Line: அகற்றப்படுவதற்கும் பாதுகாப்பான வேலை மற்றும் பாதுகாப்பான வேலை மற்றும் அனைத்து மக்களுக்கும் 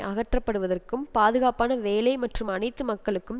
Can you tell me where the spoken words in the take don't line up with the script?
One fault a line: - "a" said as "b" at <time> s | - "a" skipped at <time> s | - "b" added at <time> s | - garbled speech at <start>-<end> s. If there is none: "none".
- "பாதுகாப்பான வேலை மற்றும்" skipped at 2.5 s